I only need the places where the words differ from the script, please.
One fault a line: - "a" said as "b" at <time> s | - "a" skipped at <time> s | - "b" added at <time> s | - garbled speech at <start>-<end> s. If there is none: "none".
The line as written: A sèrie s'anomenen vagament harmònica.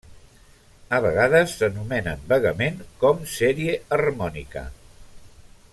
- "sèrie" said as "vegades" at 1.1 s
- "com sèrie" added at 3.0 s